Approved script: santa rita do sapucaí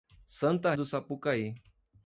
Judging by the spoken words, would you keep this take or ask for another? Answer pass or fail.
fail